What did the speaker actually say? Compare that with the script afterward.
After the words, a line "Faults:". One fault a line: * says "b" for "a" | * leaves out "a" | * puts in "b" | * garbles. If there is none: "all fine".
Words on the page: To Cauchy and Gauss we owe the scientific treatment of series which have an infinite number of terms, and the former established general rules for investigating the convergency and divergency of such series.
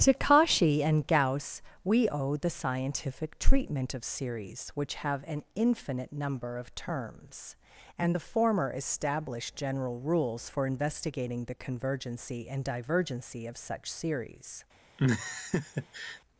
To Cauchy and Gauss we owe the scientific treatment of series which have an infinite number of terms, and the former established general rules for investigating the convergency and divergency of such series.
Faults:
all fine